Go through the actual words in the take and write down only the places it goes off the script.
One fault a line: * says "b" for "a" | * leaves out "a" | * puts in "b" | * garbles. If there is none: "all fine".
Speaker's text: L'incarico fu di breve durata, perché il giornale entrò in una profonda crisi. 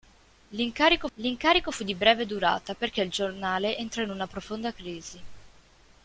* puts in "l'incarico"